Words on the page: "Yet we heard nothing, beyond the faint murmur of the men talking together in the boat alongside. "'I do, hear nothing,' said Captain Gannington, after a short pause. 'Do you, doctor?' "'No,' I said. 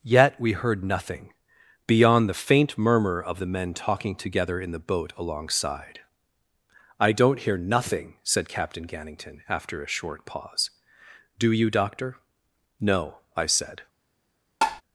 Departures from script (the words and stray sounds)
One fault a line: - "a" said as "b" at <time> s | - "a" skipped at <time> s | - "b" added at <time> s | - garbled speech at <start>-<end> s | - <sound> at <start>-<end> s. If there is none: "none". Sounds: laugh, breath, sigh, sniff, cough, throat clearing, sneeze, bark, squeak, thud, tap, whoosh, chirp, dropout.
- "do" said as "don't" at 7.1 s
- tap at 14.6-14.8 s